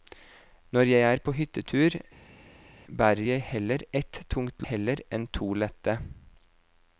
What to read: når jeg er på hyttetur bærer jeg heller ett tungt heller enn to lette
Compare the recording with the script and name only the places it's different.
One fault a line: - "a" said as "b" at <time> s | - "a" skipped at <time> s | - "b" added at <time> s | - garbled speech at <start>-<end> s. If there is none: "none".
none